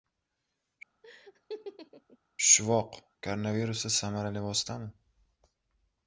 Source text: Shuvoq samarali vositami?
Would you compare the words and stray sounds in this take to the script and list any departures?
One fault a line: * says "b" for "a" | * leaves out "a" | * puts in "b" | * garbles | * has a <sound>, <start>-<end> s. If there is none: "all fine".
* has a laugh, 1.0-2.2 s
* puts in "koronavirusda"